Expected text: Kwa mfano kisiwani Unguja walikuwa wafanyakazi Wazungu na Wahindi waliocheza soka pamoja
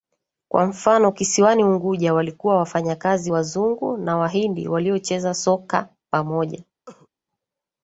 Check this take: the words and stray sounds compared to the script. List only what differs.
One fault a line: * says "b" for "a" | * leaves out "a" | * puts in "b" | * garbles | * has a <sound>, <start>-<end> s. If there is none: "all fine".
* has a cough, 6.9-7.1 s